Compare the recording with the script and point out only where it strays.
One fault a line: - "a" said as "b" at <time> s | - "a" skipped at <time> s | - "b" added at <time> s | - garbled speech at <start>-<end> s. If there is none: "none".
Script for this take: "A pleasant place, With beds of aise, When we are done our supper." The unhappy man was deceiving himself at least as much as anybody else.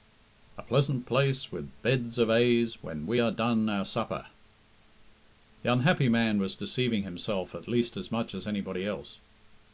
none